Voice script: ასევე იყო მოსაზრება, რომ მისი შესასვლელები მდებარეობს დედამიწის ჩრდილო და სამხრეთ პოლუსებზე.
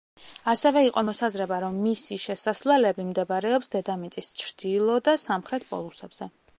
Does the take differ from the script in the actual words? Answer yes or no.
no